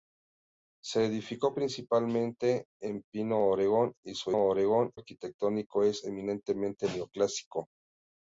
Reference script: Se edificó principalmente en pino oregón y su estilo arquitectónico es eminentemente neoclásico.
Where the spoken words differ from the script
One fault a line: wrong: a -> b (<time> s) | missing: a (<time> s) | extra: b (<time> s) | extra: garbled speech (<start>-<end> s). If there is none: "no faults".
wrong: estilo -> oregón (4.4 s)